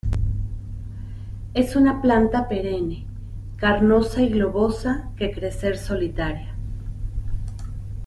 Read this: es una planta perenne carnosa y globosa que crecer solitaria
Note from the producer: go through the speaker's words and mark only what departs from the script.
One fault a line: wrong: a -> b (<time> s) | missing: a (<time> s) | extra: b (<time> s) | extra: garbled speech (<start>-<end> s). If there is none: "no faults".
no faults